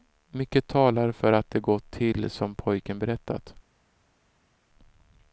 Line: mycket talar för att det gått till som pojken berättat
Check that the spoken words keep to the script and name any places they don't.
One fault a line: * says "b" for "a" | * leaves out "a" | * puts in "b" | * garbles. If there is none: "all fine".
all fine